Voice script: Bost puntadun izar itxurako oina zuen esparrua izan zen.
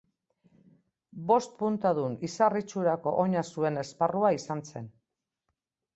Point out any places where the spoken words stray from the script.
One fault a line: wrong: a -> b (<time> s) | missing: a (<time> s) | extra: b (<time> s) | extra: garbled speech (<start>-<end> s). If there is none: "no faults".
no faults